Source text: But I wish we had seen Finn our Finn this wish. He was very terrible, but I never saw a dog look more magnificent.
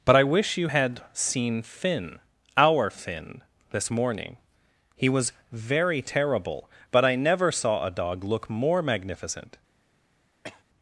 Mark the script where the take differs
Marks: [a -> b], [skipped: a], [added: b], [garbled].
But I wish [we -> you] had seen Finn our Finn this [wish. -> morning] He was very terrible, but I never saw a dog look more magnificent.